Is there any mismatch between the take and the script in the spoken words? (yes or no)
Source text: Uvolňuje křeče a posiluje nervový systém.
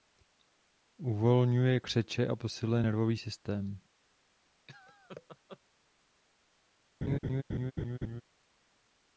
no